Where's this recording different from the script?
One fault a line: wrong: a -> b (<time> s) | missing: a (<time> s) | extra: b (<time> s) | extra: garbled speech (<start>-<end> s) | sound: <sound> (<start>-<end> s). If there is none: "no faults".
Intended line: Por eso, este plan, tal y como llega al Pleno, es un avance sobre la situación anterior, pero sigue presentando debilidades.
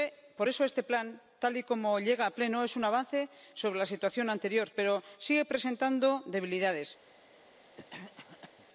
sound: cough (7.8-8.7 s)